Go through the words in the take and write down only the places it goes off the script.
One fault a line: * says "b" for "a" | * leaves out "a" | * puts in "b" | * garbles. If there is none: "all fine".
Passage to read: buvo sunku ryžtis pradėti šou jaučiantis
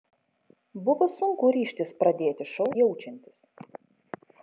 all fine